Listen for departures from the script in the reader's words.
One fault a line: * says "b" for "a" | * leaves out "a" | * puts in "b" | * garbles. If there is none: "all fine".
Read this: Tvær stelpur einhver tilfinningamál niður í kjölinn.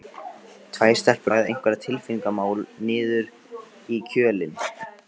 * puts in "ræða"